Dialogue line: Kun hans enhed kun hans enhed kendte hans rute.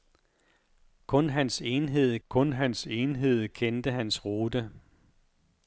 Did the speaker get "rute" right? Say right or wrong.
right